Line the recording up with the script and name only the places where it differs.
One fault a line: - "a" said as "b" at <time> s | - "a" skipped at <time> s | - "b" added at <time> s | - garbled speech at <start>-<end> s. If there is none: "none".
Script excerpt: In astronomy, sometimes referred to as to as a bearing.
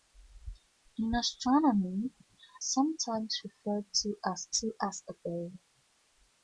none